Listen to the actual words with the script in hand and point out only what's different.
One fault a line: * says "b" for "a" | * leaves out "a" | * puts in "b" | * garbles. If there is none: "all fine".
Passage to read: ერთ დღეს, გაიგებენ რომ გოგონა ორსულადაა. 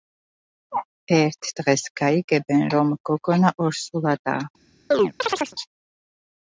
all fine